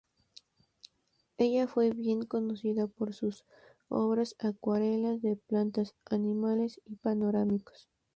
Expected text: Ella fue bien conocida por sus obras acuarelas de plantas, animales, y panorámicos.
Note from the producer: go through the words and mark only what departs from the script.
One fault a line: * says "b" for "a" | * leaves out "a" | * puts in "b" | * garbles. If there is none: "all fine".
all fine